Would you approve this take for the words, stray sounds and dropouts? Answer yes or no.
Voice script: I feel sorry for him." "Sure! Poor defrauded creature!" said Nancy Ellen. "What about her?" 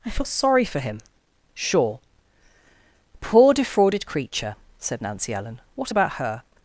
yes